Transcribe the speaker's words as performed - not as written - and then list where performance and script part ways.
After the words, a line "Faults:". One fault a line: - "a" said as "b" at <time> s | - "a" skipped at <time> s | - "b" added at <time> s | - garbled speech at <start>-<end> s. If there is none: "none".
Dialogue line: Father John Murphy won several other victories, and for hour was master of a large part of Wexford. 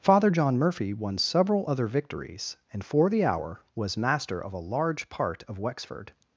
Father John Murphy won several other victories, and for the hour was master of a large part of Wexford.
Faults:
- "the" added at 3.1 s